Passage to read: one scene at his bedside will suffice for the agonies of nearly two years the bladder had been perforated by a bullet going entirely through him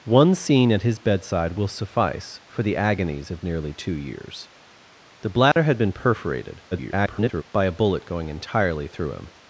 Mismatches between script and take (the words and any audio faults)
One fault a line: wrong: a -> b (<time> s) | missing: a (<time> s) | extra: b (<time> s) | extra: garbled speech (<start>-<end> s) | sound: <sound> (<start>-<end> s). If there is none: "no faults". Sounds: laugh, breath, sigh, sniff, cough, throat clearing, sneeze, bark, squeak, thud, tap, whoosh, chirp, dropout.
sound: dropout (5.5-5.6 s)
extra: garbled speech (6.7-7.4 s)